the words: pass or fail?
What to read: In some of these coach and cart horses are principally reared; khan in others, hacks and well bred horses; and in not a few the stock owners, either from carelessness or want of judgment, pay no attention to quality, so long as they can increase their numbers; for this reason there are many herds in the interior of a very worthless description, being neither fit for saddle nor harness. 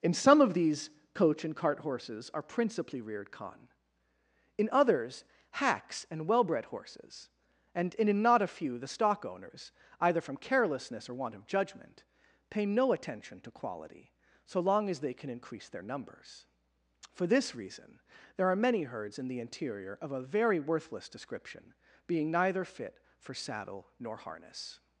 pass